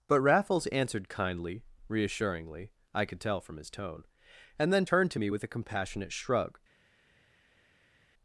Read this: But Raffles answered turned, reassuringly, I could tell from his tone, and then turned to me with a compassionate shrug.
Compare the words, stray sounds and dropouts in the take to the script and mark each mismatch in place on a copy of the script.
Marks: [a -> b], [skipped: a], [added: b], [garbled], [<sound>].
But Raffles answered [turned, -> kindly] reassuringly, I could tell from his tone, and then turned to me with a compassionate shrug.